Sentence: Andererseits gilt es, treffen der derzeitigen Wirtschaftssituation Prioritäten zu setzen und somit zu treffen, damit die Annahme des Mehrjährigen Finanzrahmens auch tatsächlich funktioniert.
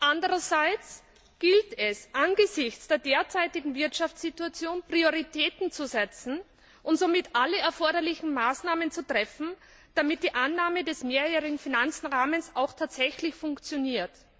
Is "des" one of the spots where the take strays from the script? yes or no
no